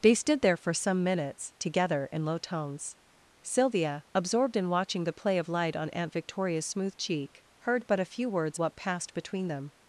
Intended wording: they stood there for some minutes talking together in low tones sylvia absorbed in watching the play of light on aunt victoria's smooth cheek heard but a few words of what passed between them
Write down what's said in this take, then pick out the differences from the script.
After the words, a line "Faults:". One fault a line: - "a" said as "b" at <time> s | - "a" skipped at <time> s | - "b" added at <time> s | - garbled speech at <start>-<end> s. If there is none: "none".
they stood there for some minutes together in low tones sylvia absorbed in watching the play of light on aunt victoria's smooth cheek heard but a few words what passed between them
Faults:
- "talking" skipped at 1.5 s
- "of" skipped at 8.6 s